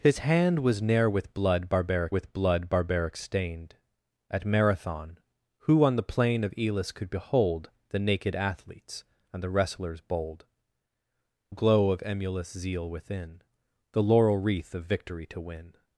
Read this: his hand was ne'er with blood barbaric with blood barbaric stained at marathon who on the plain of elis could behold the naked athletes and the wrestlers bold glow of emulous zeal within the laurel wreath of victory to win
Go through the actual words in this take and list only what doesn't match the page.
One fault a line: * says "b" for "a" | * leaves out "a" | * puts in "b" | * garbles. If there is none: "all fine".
all fine